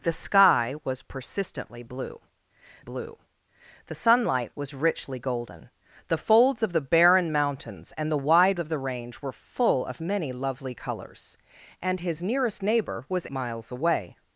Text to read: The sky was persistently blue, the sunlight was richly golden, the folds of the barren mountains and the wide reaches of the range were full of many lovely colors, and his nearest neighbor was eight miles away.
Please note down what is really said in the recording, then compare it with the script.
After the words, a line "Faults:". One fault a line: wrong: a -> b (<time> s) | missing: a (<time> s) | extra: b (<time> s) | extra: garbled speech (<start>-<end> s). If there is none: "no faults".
The sky was persistently blue blue, the sunlight was richly golden, the folds of the barren mountains and the wide of the range were full of many lovely colors, and his nearest neighbor was miles away.
Faults:
extra: blue (2.8 s)
missing: reaches (8.6 s)
missing: eight (13.3 s)